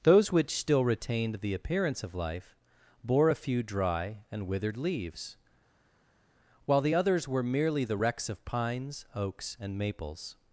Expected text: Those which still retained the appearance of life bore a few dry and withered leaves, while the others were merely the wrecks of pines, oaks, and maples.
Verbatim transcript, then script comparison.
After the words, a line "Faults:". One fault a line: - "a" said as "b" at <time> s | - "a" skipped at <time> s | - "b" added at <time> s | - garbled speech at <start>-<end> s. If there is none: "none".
Those which still retained the appearance of life bore a few dry and withered leaves, while the others were merely the wrecks of pines, oaks, and maples.
Faults:
none